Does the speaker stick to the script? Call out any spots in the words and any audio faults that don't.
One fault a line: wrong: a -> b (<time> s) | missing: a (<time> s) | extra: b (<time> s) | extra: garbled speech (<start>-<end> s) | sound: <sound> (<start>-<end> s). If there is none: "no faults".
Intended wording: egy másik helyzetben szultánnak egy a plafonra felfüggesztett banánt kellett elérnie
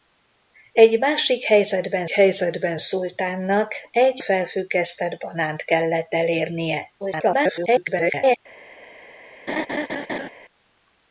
extra: helyzetben (2.1 s)
missing: a plafonra (4.2 s)
extra: garbled speech (7.0-8.4 s)
sound: laugh (9.5-10.3 s)